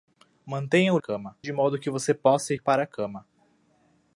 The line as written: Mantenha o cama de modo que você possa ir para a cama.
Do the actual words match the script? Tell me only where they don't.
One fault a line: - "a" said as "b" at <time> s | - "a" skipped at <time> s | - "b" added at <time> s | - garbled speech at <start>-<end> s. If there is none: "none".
none